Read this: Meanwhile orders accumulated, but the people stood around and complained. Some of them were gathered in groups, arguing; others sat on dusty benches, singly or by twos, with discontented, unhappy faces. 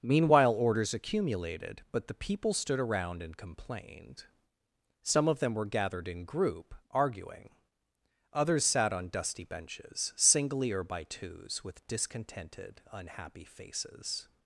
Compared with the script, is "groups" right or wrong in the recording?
wrong